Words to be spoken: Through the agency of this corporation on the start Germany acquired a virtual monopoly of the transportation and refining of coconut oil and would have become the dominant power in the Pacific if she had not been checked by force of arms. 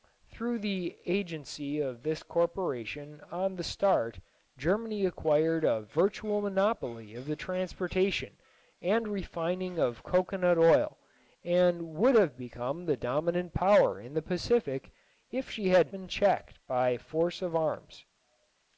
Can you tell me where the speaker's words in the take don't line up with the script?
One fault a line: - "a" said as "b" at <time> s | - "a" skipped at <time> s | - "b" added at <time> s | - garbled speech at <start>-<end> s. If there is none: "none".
- "not" skipped at 15.9 s